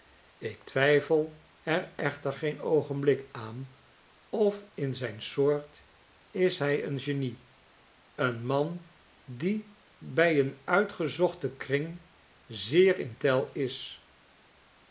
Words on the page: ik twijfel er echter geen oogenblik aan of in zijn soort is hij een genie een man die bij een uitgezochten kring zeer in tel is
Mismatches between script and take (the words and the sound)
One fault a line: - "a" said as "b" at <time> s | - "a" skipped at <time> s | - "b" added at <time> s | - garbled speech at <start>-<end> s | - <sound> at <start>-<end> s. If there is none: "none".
none